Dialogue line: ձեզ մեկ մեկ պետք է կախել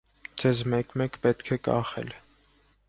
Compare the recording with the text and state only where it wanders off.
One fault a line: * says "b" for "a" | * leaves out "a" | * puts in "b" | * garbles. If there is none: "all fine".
all fine